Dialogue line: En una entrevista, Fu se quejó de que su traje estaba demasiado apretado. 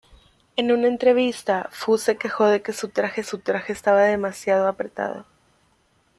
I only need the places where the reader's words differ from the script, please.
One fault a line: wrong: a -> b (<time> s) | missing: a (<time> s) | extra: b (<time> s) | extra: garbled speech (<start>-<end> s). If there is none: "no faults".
extra: su traje (3.2 s)